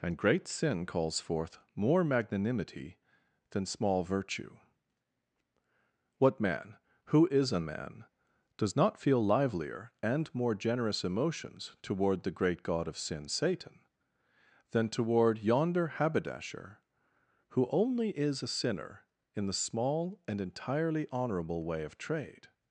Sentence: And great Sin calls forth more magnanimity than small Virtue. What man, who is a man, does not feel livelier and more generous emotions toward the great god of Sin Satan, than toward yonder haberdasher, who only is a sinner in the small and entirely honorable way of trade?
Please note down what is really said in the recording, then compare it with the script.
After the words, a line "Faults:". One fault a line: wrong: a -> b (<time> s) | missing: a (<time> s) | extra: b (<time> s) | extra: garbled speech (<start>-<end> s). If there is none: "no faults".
And great Sin calls forth more magnanimity than small Virtue. What man, who is a man, does not feel livelier and more generous emotions toward the great god of Sin Satan, than toward yonder haberdasher, who only is a sinner in the small and entirely honorable way of trade?
Faults:
no faults